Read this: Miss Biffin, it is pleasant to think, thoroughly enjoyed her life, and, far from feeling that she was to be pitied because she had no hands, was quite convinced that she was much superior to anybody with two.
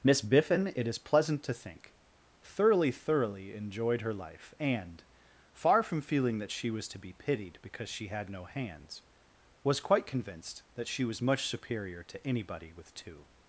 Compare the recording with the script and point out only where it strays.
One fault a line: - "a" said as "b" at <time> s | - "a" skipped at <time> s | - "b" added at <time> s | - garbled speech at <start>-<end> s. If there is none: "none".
- "thoroughly" added at 2.9 s